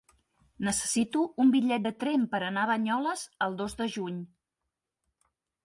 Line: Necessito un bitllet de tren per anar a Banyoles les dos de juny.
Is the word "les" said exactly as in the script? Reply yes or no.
no